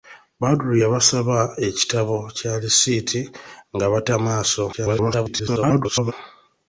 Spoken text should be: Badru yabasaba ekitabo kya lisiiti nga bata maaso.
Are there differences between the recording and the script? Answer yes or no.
yes